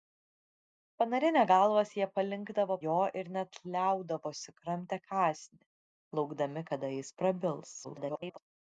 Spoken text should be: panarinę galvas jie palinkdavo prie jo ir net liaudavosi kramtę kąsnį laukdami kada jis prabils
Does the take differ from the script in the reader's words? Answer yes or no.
yes